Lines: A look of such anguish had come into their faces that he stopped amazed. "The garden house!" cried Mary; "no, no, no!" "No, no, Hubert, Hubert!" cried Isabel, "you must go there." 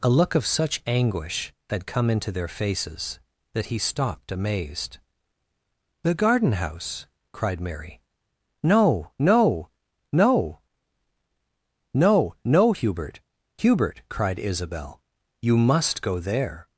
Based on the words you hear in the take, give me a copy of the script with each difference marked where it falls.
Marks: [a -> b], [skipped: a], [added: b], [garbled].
A look of such anguish had come into their faces that he stopped amazed. "The garden house!" cried Mary; "no, no, no!" "No, no, Hubert, Hubert!" cried Isabel, "you must go there."